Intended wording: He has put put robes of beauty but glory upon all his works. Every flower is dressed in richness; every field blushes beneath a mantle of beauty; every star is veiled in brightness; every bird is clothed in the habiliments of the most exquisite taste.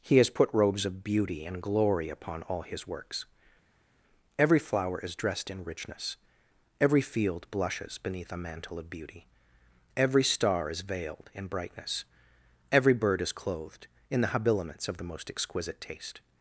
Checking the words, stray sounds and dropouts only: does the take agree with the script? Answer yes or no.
no